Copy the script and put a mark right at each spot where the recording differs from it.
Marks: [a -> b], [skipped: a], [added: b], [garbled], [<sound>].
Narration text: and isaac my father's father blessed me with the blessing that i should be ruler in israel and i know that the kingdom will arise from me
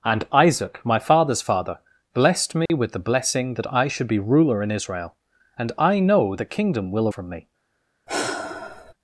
and isaac my father's father blessed me [dropout] with the blessing that i should be ruler in israel and i know [skipped: that] the kingdom will [skipped: arise] from me [sigh]